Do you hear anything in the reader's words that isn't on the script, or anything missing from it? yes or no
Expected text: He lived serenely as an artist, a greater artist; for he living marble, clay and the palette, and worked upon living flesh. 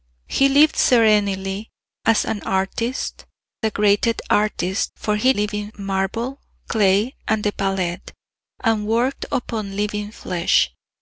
no